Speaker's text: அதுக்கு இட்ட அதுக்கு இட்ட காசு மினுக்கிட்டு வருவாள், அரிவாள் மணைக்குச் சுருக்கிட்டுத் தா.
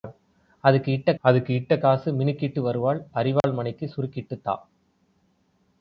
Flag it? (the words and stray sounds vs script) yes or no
yes